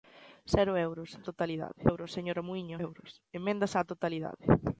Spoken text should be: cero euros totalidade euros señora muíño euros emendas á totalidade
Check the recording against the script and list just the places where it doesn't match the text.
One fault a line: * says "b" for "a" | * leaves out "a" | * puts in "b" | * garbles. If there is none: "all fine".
all fine